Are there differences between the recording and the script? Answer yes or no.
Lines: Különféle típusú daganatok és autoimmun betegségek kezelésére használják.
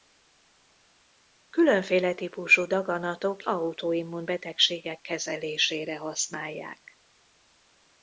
yes